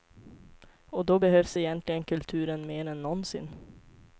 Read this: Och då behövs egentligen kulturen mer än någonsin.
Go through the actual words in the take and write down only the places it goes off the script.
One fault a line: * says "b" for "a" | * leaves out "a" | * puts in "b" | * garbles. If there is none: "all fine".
all fine